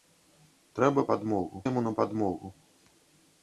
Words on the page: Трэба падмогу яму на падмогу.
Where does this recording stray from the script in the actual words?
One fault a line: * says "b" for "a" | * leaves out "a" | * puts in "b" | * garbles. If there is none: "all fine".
all fine